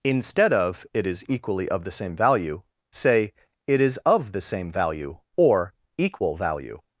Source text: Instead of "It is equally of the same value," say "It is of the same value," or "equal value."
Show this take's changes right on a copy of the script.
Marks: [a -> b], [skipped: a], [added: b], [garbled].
Instead of "It is equally of the same value," say "It is of the same value," or "equal value."